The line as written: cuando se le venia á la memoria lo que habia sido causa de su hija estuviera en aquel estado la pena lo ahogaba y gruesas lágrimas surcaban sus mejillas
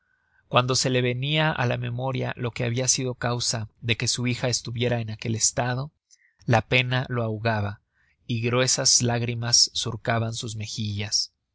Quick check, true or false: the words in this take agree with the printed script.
false